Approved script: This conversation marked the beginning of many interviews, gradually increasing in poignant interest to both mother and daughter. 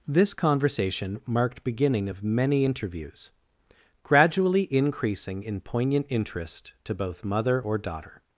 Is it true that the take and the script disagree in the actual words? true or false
true